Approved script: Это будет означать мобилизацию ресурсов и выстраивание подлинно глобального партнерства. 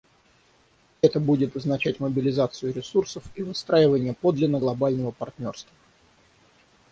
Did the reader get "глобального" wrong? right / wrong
right